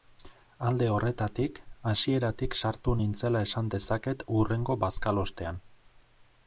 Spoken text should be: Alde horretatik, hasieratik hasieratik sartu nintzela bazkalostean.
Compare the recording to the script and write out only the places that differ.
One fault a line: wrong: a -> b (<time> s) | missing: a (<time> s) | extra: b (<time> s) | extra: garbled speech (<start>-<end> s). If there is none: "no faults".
missing: hasieratik (2.6 s)
extra: esan dezaket hurrengo (3.5 s)